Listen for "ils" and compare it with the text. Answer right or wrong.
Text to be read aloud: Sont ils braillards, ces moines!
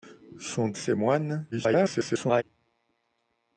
wrong